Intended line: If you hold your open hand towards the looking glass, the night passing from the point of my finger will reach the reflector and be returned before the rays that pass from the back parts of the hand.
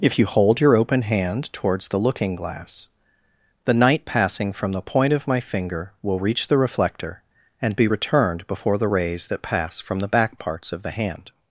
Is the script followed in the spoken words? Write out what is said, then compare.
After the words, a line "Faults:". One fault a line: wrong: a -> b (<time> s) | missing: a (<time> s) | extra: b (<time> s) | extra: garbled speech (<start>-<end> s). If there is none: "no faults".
If you hold your open hand towards the looking glass, the night passing from the point of my finger will reach the reflector and be returned before the rays that pass from the back parts of the hand.
Faults:
no faults